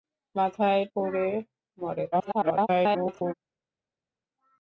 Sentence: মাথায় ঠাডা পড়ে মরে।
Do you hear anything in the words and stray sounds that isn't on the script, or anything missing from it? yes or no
yes